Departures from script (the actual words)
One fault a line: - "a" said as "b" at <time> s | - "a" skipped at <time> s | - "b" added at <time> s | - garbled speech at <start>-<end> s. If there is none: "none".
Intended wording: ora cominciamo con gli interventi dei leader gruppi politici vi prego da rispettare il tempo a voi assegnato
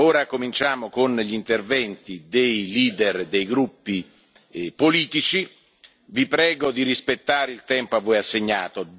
- "dei" added at 3.2 s
- "da" said as "di" at 6.7 s